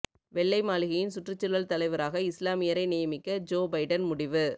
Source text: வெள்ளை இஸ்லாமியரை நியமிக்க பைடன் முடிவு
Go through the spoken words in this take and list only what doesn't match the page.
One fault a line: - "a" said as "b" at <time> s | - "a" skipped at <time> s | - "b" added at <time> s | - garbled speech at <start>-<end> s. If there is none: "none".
- "மாளிகையின் சுற்றுச்சூழல் தலைவராக" added at 0.6 s
- "ஜோ" added at 3.5 s